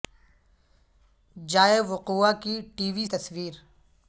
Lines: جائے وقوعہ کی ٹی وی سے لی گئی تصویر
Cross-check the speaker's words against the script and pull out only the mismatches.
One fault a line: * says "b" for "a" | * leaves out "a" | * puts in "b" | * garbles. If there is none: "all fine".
* leaves out "سے لی گئی"